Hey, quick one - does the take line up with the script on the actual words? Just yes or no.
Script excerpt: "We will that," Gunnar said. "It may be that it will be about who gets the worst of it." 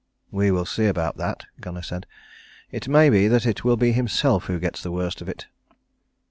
no